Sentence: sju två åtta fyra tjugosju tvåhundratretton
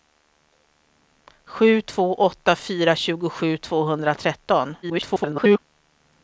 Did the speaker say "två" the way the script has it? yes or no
yes